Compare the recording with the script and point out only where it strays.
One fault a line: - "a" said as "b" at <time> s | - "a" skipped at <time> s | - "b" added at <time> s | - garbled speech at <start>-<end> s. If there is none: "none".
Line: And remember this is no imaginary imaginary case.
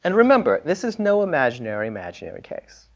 none